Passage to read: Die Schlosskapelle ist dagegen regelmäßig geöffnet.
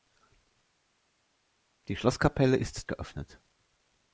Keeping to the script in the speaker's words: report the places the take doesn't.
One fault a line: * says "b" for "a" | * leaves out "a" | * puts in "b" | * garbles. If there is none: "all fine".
* leaves out "dagegen regelmäßig"